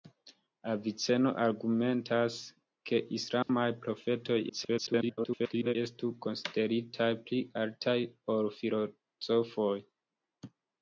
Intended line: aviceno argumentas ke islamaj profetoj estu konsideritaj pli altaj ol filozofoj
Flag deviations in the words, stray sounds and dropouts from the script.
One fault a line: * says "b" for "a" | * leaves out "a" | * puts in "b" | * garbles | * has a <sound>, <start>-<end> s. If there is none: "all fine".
* has a dropout, 3.4-3.5 s
* garbles